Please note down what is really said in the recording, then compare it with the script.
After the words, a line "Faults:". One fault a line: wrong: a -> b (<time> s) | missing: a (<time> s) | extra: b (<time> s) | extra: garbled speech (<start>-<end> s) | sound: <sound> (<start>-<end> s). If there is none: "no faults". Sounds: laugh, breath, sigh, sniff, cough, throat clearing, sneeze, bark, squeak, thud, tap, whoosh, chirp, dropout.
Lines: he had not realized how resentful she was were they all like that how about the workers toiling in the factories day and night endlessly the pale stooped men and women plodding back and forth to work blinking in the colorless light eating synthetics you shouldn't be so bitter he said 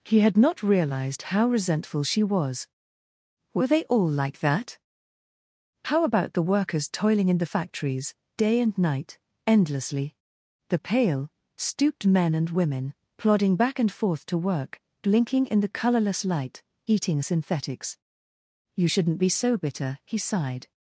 he had not realized how resentful she was were they all like that how about the workers toiling in the factories day and night endlessly the pale stooped men and women plodding back and forth to work blinking in the colorless light eating synthetics you shouldn't be so bitter he sighed
Faults:
wrong: said -> sighed (20.2 s)